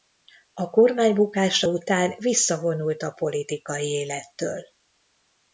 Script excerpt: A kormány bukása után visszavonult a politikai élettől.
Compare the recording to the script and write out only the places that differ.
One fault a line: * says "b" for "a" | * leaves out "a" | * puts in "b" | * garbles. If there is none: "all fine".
all fine